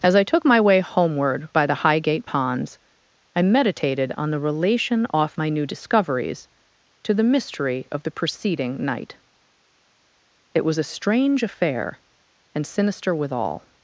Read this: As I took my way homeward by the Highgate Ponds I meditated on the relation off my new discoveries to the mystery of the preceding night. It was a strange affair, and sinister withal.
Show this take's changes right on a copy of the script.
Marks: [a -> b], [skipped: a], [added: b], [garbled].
As I took my way homeward by the Highgate Ponds I meditated on the relation off my new discoveries to the mystery of the preceding night. It was a strange affair, and sinister withal.